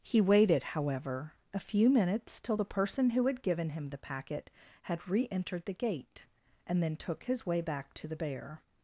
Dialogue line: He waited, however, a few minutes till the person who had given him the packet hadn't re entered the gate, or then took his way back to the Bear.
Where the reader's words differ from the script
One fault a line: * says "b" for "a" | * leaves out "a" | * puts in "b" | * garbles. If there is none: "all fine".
* says "had" for "hadn't"
* says "and" for "or"